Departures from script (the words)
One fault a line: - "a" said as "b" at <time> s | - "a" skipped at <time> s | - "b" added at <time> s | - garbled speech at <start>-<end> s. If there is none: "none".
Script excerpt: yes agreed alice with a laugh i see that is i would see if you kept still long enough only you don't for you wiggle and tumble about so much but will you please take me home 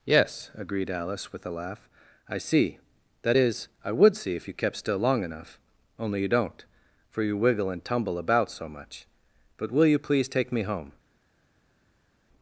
none